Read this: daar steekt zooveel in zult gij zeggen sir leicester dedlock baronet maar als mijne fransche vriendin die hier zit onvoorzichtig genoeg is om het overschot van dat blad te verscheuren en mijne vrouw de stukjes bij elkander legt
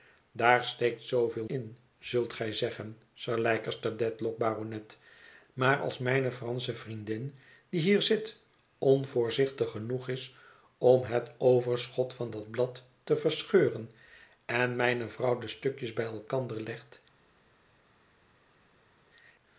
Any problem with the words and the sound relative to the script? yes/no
no